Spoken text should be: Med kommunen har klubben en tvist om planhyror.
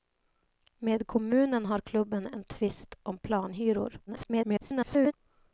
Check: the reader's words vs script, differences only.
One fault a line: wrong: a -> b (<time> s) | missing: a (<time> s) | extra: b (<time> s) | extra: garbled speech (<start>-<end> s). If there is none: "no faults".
extra: garbled speech (4.1-5.1 s)